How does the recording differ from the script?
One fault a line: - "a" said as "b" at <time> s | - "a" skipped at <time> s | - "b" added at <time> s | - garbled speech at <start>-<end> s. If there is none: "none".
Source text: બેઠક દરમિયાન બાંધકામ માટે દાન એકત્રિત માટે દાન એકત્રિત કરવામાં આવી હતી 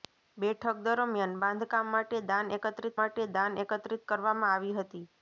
none